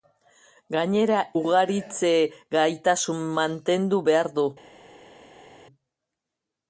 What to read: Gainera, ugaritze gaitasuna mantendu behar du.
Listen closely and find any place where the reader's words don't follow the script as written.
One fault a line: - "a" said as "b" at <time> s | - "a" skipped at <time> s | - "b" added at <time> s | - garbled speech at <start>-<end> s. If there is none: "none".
none